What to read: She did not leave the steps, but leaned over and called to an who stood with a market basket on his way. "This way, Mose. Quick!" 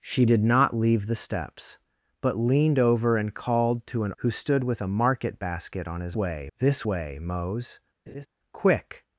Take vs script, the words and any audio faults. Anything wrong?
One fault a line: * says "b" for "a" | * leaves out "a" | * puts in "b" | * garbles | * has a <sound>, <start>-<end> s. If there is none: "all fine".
* has a laugh, 8.1-8.3 s